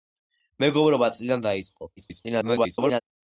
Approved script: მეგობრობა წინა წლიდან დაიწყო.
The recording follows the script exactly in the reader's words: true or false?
false